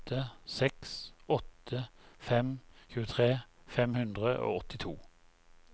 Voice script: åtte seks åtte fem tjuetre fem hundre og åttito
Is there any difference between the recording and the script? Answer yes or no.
no